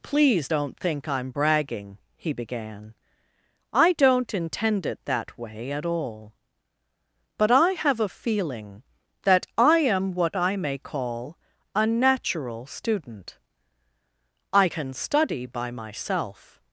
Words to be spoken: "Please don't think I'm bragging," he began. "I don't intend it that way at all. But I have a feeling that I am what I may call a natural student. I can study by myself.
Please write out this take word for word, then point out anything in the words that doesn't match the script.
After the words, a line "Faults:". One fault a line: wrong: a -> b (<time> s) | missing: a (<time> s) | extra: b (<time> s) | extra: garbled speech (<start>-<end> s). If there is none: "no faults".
"Please don't think I'm bragging," he began. "I don't intend it that way at all. But I have a feeling that I am what I may call a natural student. I can study by myself.
Faults:
no faults